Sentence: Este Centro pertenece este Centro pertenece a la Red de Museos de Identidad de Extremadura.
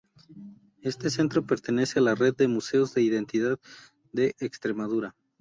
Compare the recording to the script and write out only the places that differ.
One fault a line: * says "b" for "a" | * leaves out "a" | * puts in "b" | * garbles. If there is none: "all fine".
* leaves out "este Centro pertenece"